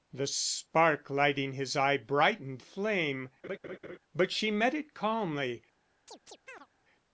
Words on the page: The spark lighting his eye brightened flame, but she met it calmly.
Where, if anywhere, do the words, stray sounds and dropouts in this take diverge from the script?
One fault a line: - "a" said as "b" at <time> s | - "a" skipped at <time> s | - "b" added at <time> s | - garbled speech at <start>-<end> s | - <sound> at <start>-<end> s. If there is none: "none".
- laugh at 3.4-4.0 s
- chirp at 6.1-6.7 s